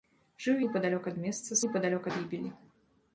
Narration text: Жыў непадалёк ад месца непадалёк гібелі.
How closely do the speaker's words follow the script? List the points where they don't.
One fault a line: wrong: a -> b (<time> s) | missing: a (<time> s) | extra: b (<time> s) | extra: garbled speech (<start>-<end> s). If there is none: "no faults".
no faults